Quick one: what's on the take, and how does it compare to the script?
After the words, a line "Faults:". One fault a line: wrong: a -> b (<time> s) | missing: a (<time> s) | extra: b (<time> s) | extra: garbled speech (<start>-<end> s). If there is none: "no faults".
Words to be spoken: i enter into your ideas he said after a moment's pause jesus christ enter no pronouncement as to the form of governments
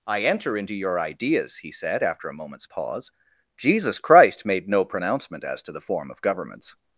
i enter into your ideas he said after a moment's pause jesus christ made no pronouncement as to the form of governments
Faults:
wrong: enter -> made (4.4 s)